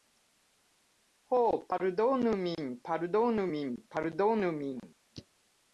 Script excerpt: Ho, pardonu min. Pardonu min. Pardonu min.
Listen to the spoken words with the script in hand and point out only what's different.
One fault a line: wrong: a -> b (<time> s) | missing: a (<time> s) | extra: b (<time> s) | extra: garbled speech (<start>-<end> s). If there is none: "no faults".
no faults